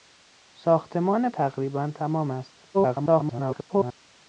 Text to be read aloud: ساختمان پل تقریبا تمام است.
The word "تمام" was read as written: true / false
true